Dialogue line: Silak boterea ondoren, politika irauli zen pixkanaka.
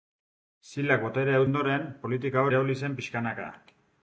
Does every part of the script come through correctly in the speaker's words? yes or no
yes